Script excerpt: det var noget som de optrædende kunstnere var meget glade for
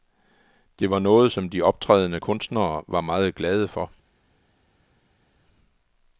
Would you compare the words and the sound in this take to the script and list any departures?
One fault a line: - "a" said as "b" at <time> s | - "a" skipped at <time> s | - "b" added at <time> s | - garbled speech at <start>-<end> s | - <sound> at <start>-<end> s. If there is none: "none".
none